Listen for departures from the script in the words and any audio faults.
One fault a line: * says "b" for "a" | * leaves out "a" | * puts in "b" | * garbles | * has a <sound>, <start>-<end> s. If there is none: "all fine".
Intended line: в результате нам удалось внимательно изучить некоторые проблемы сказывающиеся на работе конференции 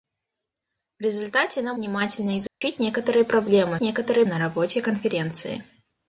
* leaves out "удалось"
* has a dropout, 2.5-2.6 s
* says "некоторые" for "сказывающиеся"